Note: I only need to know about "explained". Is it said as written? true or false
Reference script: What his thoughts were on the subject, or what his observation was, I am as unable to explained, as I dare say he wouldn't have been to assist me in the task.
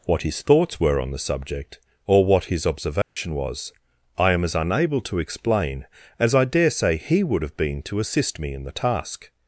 false